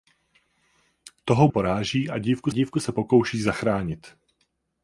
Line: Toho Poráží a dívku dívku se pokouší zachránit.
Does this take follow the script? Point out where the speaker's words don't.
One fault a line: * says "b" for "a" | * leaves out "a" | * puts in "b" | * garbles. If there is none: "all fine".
all fine